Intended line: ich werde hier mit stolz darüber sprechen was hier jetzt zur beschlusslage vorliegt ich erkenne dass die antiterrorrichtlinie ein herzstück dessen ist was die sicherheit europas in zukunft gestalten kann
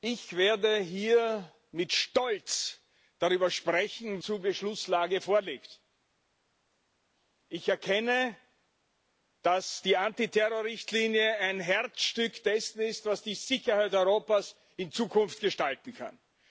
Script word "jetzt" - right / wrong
wrong